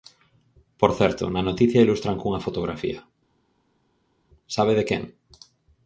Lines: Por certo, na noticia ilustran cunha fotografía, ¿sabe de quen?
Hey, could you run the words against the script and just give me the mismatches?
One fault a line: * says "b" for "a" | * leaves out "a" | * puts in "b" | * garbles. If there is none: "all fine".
all fine